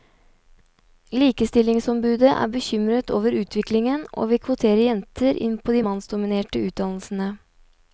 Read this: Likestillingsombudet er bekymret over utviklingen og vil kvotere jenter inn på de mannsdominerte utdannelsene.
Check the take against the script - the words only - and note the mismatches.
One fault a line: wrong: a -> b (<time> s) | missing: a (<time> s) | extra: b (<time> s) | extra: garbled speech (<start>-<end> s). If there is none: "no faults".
no faults